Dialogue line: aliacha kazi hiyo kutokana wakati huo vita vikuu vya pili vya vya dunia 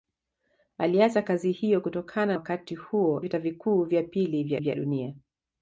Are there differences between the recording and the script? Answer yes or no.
no